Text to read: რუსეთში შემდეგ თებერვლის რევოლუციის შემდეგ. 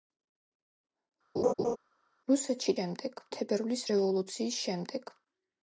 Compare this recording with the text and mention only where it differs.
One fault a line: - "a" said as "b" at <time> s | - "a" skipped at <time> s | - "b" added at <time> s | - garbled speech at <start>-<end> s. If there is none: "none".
none